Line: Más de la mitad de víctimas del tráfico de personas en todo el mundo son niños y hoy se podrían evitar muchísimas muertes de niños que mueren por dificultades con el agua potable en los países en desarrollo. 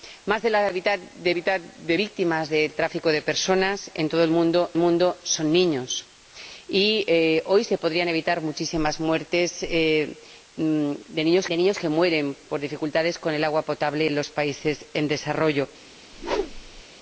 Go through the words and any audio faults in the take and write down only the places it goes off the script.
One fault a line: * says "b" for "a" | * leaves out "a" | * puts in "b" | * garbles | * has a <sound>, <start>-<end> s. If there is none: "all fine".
* puts in "mitad de"
* puts in "mundo"
* puts in "niños"
* has a whoosh, 16.1-16.8 s